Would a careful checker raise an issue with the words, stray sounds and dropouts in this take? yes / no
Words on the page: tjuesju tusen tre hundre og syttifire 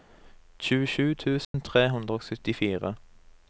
yes